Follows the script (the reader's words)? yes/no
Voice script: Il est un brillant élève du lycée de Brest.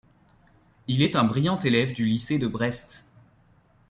yes